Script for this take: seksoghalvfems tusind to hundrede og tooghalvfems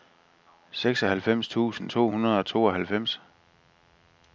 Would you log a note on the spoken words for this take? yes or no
no